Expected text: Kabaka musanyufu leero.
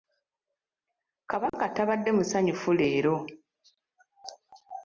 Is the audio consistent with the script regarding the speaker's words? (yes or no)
no